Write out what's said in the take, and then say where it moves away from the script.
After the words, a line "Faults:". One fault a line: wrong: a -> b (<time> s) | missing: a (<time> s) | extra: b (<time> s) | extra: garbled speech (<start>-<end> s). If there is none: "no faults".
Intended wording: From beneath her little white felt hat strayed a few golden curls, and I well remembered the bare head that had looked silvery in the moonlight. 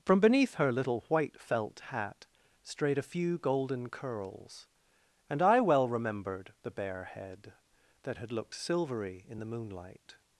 From beneath her little white felt hat strayed a few golden curls, and I well remembered the bare head that had looked silvery in the moonlight.
Faults:
no faults